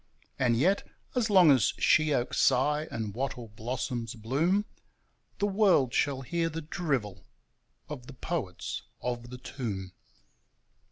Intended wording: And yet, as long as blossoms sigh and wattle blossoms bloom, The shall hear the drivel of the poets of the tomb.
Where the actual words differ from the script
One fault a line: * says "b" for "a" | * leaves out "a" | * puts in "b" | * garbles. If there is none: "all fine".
* says "sheoaks" for "blossoms"
* puts in "world"